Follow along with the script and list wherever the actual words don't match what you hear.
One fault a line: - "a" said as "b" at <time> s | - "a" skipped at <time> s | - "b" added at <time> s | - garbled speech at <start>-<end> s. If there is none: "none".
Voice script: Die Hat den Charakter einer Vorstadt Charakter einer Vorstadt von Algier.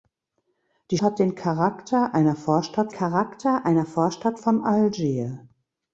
none